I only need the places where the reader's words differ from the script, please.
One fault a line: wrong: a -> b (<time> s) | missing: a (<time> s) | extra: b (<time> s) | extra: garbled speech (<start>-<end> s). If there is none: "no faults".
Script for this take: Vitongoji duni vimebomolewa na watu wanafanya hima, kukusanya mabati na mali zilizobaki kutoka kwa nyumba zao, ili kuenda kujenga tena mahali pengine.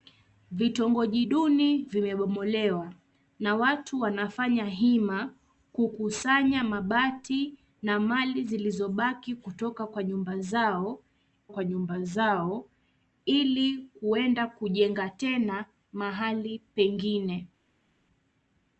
extra: kwa nyumba zao (11.5 s)